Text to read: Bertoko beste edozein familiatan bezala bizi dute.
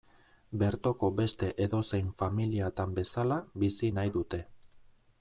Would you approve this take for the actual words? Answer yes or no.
no